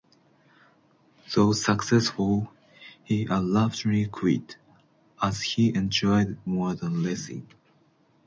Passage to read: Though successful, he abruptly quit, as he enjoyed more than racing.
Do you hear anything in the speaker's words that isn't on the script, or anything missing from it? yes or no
no